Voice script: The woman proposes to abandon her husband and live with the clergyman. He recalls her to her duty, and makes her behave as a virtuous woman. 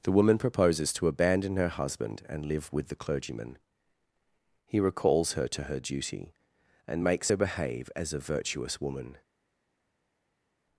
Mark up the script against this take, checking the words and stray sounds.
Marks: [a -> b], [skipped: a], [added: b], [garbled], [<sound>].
The woman proposes to abandon her husband and live with the clergyman. He recalls her to her duty, and makes her behave as a virtuous woman.